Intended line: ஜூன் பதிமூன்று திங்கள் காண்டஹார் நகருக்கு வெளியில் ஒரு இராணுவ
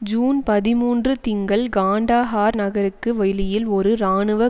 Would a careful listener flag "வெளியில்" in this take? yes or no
no